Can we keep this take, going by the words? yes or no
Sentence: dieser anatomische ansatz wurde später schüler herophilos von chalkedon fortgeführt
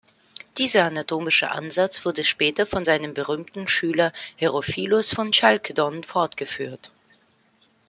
no